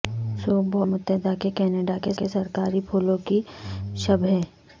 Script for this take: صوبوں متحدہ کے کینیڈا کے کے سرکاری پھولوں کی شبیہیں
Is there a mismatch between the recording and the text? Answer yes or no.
no